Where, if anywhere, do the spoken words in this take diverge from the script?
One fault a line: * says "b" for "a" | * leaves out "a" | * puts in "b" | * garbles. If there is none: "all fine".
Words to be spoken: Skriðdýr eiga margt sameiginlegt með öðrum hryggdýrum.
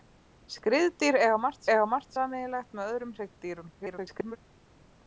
* puts in "eiga margt"
* garbles